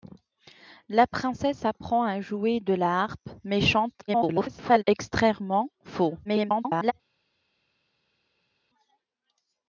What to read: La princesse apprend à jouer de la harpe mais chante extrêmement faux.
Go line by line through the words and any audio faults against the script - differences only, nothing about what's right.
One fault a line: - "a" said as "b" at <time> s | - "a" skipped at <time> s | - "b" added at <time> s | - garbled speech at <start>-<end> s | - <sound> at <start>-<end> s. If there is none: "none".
- garbled speech at 4.1-4.8 s
- garbled speech at 6.2-6.9 s